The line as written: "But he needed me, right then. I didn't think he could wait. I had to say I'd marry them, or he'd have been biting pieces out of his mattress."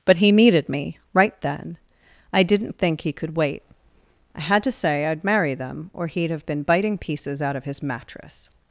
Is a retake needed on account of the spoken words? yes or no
no